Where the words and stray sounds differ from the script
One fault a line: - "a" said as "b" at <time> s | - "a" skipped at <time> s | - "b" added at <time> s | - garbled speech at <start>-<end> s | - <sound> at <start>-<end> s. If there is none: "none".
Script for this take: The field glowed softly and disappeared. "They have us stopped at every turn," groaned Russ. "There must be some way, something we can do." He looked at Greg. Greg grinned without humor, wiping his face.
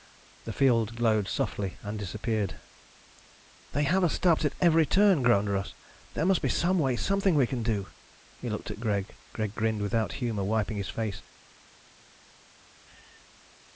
none